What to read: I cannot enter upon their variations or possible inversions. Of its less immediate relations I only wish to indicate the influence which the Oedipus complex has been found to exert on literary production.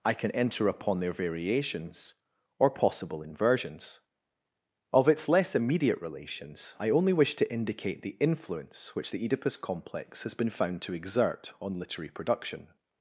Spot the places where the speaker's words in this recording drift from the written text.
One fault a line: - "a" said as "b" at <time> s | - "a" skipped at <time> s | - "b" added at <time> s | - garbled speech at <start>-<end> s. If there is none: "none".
- "cannot" said as "can" at 0.1 s